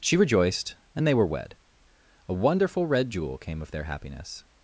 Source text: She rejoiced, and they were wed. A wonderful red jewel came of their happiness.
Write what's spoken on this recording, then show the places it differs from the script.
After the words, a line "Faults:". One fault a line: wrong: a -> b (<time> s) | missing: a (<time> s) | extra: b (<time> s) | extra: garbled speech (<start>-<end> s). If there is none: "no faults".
She rejoiced, and they were wed. A wonderful red jewel came of their happiness.
Faults:
no faults